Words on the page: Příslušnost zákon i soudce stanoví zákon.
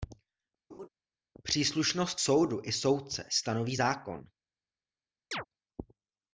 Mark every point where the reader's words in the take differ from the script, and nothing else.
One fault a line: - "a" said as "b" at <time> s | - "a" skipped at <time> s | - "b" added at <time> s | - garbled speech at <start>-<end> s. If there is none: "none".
- "zákon" said as "soudu" at 2.2 s